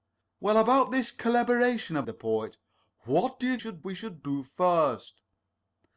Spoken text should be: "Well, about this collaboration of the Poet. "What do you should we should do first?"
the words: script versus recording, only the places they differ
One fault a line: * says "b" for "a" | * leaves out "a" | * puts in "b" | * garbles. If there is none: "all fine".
all fine